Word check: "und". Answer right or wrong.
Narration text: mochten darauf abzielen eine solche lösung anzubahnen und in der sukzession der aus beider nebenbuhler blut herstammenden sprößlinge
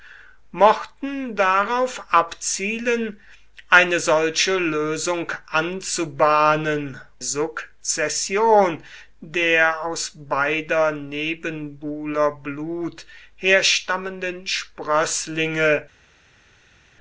wrong